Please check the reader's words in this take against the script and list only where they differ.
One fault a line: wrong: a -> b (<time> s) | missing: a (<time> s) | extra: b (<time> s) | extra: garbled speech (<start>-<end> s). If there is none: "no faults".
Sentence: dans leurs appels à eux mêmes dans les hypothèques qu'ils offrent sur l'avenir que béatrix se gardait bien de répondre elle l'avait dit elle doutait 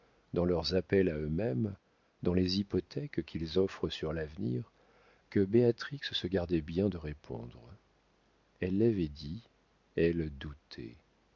no faults